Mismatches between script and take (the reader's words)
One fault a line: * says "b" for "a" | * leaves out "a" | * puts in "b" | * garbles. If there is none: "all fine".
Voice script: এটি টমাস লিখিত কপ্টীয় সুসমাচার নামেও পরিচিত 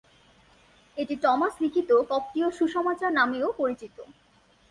all fine